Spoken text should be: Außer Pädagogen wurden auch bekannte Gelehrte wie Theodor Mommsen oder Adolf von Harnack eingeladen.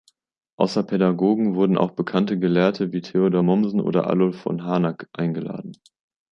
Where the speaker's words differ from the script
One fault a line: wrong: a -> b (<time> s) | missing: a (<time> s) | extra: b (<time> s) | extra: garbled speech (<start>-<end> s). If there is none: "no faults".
no faults